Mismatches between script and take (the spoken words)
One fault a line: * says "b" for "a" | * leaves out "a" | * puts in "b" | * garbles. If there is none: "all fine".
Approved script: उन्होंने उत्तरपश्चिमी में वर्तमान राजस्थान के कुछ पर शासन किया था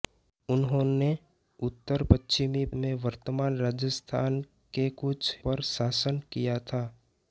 all fine